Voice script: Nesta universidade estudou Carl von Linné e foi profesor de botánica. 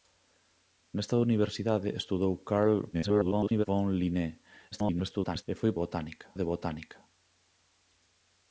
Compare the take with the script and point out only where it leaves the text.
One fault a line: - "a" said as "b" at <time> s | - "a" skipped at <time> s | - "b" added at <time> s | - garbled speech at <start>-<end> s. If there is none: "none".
- garbled speech at 2.9-3.7 s
- garbled speech at 4.7-5.4 s
- "profesor" said as "botánica" at 5.8 s